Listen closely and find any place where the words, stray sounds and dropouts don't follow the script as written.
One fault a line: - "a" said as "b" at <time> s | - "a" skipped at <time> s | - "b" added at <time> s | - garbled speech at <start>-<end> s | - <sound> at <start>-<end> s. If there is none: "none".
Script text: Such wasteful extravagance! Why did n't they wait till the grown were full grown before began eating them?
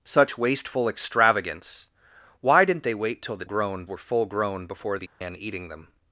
- dropout at 5.1-5.2 s